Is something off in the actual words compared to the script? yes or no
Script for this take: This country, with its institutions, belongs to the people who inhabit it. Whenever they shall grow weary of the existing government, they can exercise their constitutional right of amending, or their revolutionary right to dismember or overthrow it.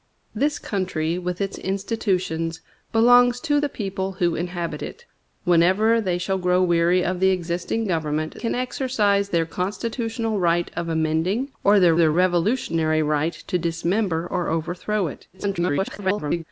yes